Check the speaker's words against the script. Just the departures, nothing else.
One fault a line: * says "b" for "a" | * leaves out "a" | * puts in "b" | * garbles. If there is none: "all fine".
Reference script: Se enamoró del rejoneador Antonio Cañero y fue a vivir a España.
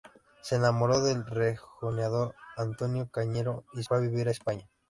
all fine